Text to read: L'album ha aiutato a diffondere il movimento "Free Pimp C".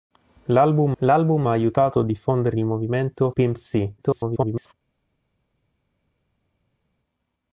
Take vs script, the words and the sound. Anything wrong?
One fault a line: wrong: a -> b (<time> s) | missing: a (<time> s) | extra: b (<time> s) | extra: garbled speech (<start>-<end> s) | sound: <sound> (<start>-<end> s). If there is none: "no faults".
extra: l'album (1.0 s)
missing: Free (3.3 s)
extra: garbled speech (4.0-4.7 s)